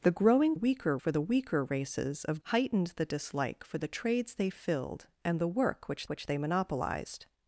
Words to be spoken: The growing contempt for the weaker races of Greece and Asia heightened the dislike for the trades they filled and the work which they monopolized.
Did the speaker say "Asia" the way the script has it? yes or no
no